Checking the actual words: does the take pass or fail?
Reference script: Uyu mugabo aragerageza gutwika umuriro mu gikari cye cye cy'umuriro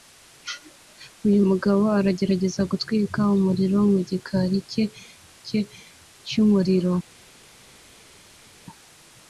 pass